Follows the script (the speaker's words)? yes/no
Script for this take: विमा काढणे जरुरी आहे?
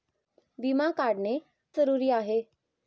yes